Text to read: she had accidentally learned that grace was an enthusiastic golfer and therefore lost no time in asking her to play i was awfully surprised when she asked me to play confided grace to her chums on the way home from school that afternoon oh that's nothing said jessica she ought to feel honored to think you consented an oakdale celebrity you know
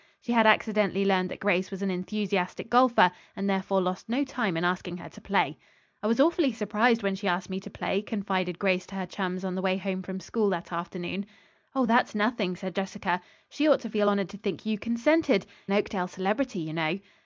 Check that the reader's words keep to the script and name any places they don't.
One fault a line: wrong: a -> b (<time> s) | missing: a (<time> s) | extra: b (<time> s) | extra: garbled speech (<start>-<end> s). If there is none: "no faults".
no faults